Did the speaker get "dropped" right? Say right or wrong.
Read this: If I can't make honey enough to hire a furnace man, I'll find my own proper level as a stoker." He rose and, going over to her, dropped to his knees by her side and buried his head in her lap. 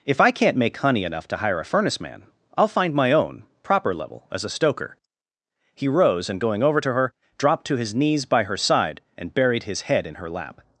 right